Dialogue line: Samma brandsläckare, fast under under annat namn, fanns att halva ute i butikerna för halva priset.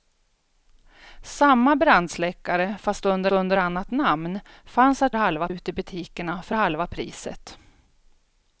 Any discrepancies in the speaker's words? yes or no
no